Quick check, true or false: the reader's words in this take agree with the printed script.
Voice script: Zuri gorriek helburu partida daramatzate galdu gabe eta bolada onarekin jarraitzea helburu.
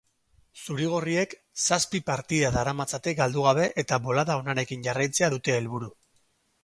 false